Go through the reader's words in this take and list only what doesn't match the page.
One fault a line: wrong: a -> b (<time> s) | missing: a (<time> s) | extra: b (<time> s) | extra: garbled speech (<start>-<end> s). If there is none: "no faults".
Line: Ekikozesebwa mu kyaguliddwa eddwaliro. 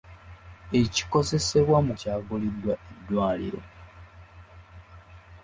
no faults